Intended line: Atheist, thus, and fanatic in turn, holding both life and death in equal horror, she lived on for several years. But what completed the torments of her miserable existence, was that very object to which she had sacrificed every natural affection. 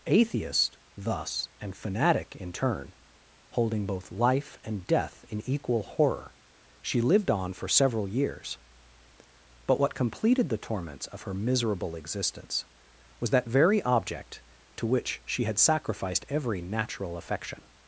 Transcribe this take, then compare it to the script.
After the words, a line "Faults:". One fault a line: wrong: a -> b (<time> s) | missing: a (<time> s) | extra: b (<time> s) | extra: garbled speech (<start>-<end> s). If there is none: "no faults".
Atheist, thus, and fanatic in turn, holding both life and death in equal horror, she lived on for several years. But what completed the torments of her miserable existence, was that very object to which she had sacrificed every natural affection.
Faults:
no faults